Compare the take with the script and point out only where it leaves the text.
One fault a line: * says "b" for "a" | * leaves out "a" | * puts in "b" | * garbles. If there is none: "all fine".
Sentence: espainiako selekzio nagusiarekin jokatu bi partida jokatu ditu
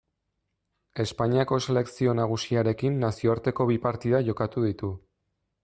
* says "nazioarteko" for "jokatu"